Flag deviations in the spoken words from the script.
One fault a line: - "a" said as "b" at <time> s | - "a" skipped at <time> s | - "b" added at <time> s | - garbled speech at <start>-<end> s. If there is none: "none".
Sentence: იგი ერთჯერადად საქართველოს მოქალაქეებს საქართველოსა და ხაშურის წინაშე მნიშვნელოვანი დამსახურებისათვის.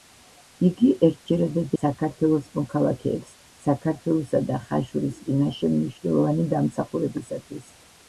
none